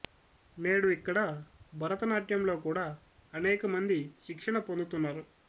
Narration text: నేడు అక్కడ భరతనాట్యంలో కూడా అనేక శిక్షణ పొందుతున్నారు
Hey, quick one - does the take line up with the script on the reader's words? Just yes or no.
no